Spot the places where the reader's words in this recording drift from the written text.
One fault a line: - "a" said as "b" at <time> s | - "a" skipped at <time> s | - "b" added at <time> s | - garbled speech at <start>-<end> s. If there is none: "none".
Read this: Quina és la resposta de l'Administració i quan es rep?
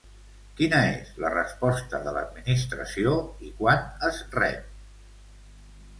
none